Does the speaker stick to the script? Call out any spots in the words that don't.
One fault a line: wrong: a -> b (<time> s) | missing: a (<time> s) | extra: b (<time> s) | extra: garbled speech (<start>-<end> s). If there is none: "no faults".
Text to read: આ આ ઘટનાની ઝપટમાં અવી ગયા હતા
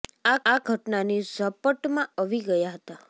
no faults